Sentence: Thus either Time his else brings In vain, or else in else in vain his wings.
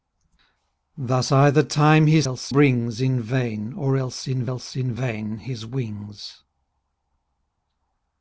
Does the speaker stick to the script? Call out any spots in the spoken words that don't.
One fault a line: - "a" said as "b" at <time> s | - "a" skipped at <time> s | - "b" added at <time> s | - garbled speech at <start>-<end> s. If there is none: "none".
none